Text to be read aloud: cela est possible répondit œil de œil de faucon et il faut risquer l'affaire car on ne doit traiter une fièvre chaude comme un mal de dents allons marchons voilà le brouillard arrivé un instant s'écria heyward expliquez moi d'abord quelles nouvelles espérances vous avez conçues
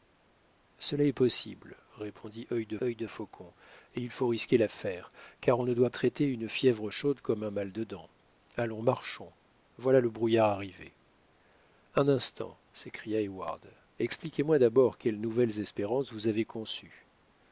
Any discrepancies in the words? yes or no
no